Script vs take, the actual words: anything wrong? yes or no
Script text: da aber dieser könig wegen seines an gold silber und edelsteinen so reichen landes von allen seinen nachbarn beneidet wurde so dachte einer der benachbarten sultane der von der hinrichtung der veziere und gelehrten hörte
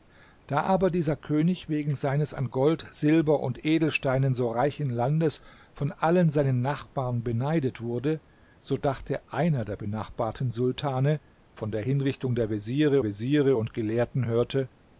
yes